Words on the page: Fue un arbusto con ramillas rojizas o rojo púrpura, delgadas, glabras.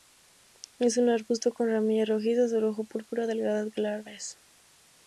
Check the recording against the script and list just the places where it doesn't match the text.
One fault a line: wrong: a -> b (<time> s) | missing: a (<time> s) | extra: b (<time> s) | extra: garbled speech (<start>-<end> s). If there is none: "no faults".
wrong: Fue -> Es (0.8 s)